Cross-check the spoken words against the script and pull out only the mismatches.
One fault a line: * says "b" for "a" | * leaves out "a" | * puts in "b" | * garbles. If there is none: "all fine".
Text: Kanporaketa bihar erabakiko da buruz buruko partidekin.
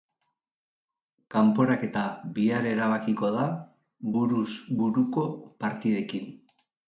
all fine